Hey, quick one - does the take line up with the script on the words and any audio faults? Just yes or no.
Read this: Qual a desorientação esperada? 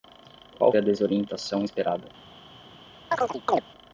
no